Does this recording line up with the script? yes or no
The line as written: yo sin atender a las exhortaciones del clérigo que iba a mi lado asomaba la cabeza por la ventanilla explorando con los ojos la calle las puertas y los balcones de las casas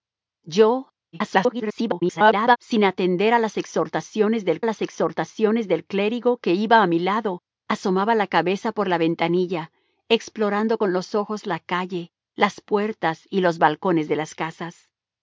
no